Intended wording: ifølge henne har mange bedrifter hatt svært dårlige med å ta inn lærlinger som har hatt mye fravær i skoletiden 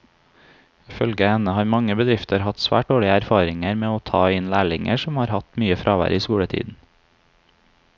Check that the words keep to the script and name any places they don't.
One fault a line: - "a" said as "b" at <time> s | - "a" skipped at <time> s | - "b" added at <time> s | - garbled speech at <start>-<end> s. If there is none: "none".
- "erfaringer" added at 3.2 s